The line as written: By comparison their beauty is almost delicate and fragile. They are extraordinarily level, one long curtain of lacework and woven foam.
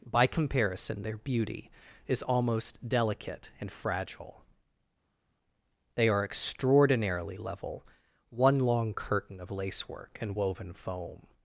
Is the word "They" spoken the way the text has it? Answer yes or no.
yes